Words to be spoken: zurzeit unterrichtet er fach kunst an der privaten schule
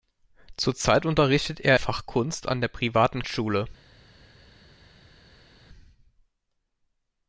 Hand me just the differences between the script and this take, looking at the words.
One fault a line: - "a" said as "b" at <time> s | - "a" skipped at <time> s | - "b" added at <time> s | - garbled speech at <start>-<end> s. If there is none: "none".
none